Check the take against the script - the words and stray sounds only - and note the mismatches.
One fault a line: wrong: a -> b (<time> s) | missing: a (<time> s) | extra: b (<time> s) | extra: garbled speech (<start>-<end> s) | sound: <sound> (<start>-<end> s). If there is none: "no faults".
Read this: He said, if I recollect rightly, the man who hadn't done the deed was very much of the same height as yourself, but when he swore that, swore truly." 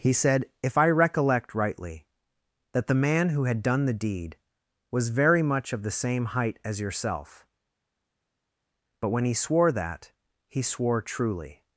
extra: that (2.7 s)
wrong: hadn't -> had (3.4 s)
extra: he (10.5 s)